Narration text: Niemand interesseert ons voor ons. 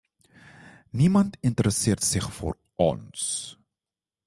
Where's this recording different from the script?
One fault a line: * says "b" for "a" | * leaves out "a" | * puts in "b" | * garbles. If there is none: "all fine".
* says "zich" for "ons"